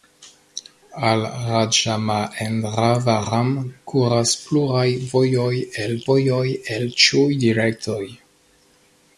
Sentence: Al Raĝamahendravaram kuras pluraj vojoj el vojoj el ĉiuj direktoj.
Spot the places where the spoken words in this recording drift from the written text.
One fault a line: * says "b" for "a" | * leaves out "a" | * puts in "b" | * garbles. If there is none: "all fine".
all fine